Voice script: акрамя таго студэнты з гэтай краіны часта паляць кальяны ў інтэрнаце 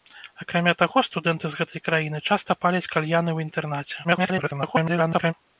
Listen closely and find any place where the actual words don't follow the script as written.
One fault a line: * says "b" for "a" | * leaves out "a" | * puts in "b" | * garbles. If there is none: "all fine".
* garbles